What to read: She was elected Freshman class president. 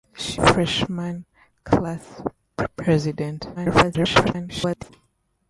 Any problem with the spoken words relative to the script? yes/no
yes